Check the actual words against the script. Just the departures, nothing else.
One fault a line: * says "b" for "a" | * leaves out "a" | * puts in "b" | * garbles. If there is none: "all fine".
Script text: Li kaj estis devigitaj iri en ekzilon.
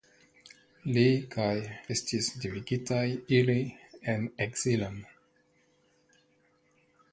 all fine